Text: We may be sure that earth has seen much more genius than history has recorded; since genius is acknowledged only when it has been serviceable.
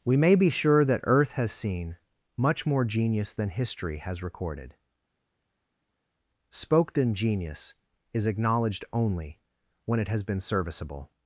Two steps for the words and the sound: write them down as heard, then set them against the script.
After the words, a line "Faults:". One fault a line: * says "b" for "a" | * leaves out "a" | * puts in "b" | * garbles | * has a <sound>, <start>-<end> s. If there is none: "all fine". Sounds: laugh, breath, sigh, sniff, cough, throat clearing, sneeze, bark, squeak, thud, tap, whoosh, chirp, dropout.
We may be sure that earth has seen much more genius than history has recorded; spoken genius is acknowledged only when it has been serviceable.
Faults:
* says "spoken" for "since"